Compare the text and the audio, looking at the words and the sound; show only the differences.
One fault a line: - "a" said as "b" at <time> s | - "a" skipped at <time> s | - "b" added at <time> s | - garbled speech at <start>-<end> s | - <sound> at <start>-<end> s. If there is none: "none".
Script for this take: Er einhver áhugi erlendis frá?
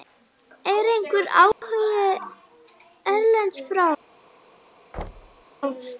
- dropout at 1.5-1.6 s
- thud at 4.9-5.4 s